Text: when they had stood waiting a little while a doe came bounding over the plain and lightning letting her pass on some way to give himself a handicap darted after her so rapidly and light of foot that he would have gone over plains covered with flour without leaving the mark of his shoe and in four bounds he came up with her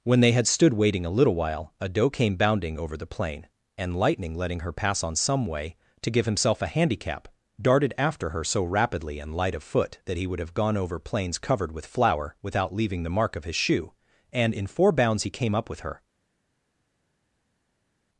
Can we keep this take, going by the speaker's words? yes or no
yes